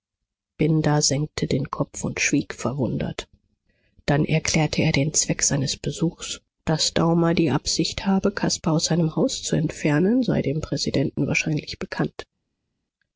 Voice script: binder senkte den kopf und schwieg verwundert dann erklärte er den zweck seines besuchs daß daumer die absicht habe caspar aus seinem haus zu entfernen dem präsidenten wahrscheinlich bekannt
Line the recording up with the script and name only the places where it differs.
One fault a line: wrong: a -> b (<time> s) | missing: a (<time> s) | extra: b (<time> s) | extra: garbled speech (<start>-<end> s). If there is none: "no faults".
extra: sei (10.2 s)